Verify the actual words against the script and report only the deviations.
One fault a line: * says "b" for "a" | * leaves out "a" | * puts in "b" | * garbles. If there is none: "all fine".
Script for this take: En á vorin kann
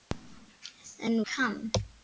* leaves out "vorin"